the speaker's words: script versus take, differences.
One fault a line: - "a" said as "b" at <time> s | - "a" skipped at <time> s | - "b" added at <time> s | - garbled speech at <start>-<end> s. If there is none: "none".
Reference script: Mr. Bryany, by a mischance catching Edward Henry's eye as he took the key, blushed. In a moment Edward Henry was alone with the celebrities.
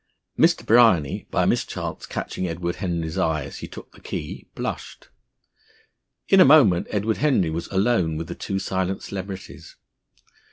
- "two silent" added at 8.4 s